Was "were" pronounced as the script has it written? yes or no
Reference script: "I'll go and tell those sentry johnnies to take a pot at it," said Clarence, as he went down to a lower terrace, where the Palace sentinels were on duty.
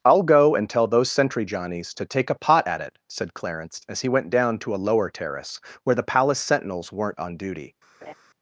no